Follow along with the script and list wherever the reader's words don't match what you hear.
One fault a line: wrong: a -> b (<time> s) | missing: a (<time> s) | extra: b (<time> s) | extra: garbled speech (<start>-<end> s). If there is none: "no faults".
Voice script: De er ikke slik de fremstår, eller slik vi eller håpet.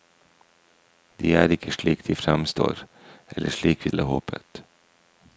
no faults